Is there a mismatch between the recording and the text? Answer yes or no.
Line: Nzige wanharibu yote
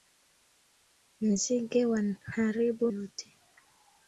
no